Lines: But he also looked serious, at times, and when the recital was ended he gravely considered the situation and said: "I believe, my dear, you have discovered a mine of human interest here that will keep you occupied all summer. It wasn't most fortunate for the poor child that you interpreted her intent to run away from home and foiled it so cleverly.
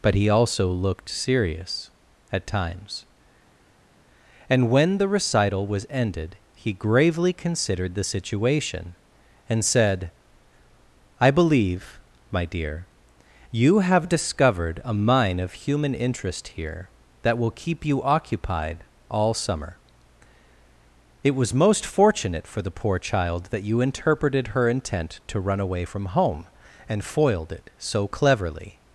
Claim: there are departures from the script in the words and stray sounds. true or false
true